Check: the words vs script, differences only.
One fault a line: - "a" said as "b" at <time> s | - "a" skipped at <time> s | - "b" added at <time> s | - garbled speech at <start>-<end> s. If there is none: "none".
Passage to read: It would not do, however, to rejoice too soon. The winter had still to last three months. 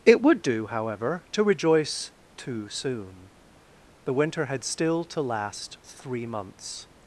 - "not" skipped at 0.4 s